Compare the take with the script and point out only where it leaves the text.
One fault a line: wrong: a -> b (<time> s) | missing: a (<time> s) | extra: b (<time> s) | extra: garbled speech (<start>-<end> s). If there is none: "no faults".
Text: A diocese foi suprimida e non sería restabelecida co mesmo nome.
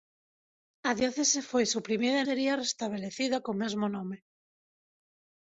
missing: non (2.3 s)